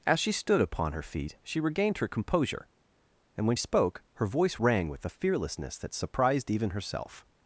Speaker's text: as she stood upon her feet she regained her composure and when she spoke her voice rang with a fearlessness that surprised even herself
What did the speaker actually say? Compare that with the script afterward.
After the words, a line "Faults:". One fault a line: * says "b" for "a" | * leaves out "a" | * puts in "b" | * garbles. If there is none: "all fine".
as she stood upon her feet she regained her composure and when spoke her voice rang with a fearlessness that surprised even herself
Faults:
* leaves out "she"